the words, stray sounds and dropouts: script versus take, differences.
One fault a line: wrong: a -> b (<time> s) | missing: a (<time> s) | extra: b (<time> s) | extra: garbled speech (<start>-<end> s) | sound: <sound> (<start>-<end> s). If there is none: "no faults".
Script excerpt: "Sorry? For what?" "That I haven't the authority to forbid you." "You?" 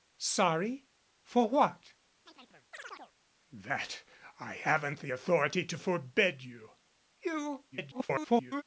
sound: chirp (2.3-3.1 s)
extra: garbled speech (7.7-8.6 s)